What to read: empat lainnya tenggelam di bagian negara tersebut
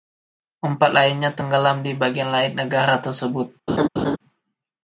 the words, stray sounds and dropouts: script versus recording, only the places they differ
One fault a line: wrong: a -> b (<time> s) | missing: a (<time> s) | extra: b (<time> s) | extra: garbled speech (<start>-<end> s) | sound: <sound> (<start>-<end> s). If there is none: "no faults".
extra: lain (2.3 s)
sound: laugh (3.7-4.2 s)